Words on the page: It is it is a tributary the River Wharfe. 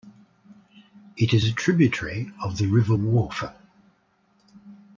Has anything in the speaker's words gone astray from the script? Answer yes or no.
yes